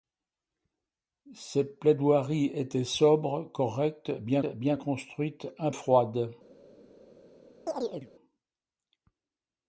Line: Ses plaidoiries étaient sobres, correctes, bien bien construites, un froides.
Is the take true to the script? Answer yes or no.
yes